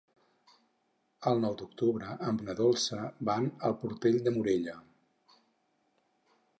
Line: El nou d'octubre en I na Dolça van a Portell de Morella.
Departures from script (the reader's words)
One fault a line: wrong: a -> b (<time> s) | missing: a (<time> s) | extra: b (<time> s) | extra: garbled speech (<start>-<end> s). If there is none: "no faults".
no faults